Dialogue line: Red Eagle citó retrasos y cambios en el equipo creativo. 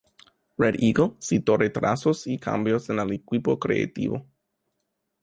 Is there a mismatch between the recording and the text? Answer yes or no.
no